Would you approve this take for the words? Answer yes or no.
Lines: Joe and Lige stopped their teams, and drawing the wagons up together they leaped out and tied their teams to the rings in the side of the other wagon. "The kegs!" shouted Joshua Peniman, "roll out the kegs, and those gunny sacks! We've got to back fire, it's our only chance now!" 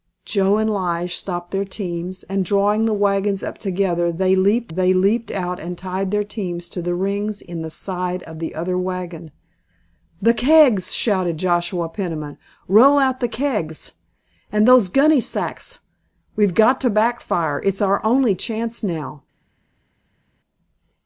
no